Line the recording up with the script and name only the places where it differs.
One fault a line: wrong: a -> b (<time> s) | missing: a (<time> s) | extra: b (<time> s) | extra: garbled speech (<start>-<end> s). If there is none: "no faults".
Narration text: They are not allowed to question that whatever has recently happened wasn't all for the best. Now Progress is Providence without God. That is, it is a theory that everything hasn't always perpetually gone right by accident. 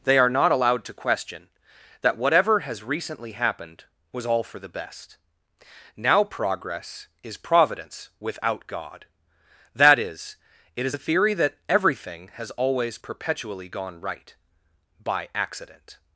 wrong: wasn't -> was (4.1 s)
wrong: hasn't -> has (12.3 s)